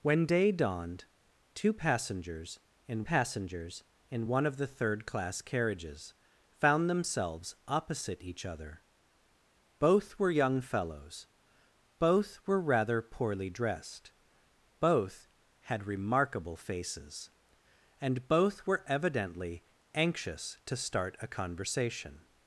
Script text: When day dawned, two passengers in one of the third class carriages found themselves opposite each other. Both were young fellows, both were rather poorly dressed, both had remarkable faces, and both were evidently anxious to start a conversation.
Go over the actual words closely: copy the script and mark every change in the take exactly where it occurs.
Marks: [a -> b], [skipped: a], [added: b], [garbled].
When day dawned, two passengers in [added: passengers in] one of the third class carriages found themselves opposite each other. Both were young fellows, both were rather poorly dressed, both had remarkable faces, and both were evidently anxious to start a conversation.